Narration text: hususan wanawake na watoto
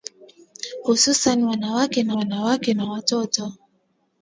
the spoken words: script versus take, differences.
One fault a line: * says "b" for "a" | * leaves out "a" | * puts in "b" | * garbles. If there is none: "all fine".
* puts in "wanawake na"